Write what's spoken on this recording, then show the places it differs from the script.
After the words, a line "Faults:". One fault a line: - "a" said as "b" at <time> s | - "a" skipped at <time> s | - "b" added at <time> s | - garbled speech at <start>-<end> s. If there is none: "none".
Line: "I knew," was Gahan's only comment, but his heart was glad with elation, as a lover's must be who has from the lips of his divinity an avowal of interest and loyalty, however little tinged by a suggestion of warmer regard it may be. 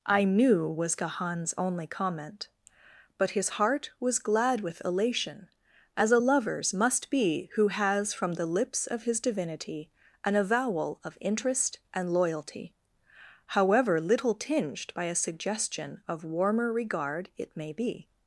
"I knew," was Gahan's only comment, but his heart was glad with elation, as a lover's must be who has from the lips of his divinity an avowal of interest and loyalty, however little tinged by a suggestion of warmer regard it may be.
Faults:
none